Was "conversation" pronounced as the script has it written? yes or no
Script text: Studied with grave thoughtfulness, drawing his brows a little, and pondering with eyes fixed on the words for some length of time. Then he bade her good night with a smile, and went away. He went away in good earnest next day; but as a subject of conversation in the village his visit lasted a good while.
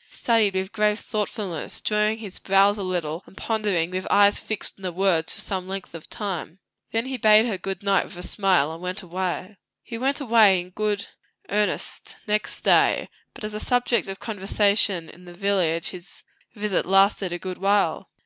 yes